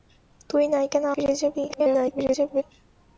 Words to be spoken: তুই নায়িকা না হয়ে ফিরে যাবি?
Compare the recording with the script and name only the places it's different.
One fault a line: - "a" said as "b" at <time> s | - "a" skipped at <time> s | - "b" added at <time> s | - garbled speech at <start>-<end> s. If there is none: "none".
- "হয়ে" skipped at 1.1 s
- garbled speech at 1.7-2.6 s